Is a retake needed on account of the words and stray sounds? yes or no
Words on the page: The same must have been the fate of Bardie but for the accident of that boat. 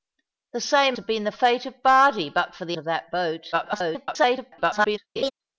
yes